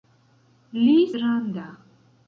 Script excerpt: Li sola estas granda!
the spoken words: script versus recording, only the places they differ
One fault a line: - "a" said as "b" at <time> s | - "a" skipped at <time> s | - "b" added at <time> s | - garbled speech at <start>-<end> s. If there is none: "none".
- "sola estas" skipped at 0.9 s